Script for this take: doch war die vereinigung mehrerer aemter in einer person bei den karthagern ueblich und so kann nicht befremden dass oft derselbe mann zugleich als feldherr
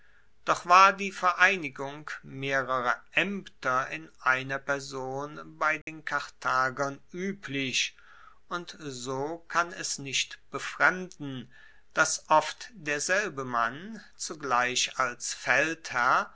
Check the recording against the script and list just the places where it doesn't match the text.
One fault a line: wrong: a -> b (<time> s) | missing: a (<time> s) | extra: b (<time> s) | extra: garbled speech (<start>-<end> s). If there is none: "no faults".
extra: es (9.7 s)